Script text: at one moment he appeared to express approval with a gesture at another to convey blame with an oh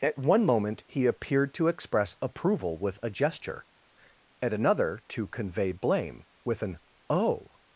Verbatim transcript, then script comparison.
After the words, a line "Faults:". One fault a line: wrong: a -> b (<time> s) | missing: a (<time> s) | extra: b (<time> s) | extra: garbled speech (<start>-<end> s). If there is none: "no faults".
at one moment he appeared to express approval with a gesture at another to convey blame with an oh
Faults:
no faults